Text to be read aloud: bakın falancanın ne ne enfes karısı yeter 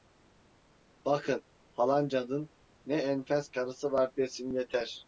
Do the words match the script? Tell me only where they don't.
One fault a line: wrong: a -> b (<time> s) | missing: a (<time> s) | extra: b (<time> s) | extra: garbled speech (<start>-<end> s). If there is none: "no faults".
missing: ne (3.0 s)
extra: var desin (3.9 s)